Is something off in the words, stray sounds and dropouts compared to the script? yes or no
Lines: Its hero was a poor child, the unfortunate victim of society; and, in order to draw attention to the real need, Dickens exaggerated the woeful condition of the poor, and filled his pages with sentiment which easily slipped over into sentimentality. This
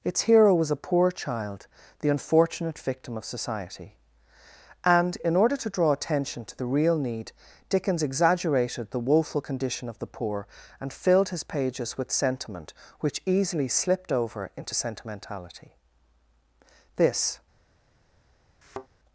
yes